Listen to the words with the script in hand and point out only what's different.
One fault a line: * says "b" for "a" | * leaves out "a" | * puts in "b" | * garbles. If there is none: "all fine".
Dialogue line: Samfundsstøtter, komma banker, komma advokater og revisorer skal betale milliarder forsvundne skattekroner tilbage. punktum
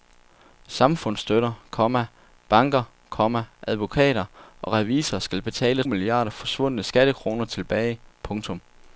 all fine